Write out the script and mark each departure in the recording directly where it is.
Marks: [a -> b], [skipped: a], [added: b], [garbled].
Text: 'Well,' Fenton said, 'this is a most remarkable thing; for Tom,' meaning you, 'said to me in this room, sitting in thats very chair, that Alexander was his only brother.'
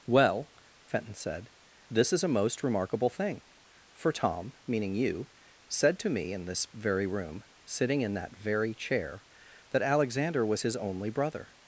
'Well,' Fenton said, 'this is a most remarkable thing; for Tom,' meaning you, 'said to me in this [added: very] room, sitting in [thats -> that] very chair, that Alexander was his only brother.'